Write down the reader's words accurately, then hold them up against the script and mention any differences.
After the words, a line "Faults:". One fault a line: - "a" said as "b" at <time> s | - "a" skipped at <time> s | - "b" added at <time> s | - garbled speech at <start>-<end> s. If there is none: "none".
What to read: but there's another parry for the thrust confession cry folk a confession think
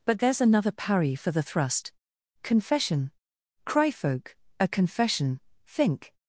but there's another parry for the thrust confession cry folk a confession think
Faults:
none